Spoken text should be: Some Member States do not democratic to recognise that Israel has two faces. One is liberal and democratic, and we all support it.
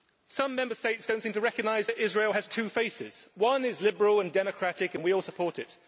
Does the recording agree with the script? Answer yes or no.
no